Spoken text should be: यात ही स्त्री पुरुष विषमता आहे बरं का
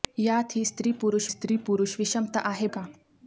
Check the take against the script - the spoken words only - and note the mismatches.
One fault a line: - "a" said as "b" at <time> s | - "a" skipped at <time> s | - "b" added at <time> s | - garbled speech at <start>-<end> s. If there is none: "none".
- "स्त्री पुरुष" added at 1.3 s
- "बरं" skipped at 2.7 s